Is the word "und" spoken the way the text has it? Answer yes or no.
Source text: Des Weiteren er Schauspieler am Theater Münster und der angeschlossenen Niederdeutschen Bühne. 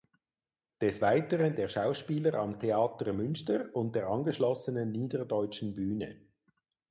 yes